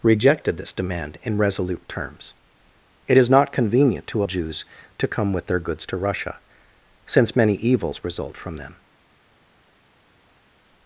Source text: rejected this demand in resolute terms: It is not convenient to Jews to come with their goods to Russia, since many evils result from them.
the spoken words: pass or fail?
pass